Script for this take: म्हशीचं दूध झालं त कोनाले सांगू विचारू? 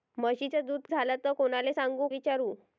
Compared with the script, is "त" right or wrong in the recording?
right